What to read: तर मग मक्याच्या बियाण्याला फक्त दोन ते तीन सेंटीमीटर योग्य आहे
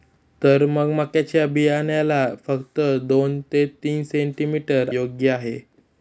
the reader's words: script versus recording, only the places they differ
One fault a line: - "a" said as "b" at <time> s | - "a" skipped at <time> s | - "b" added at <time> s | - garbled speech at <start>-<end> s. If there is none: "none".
none